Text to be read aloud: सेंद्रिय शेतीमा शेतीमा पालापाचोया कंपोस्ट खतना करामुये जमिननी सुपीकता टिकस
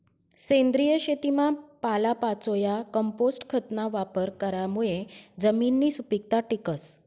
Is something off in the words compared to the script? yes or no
yes